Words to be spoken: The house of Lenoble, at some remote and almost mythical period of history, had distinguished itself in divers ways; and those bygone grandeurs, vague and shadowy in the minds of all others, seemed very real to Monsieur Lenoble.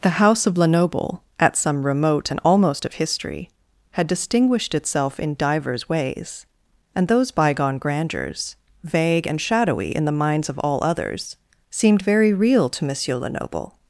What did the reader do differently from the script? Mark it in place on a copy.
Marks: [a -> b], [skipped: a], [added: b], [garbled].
The house of Lenoble, at some remote and almost [skipped: mythical period] of history, had distinguished itself in divers ways; and those bygone grandeurs, vague and shadowy in the minds of all others, seemed very real to Monsieur Lenoble.